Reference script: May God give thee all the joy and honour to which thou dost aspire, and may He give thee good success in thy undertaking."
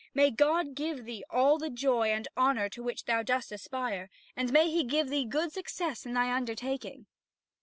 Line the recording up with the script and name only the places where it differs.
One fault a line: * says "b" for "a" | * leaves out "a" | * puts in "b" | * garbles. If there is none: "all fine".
all fine